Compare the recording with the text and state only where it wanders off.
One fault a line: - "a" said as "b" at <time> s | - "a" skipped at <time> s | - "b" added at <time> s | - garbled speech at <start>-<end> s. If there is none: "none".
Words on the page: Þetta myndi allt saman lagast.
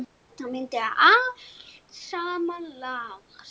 none